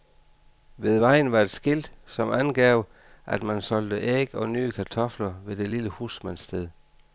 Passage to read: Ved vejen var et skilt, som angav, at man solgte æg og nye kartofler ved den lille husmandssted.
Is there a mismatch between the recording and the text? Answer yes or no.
yes